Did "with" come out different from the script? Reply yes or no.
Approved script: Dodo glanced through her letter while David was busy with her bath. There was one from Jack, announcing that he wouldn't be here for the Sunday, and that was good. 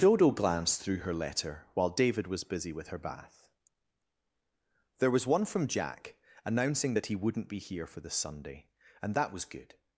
no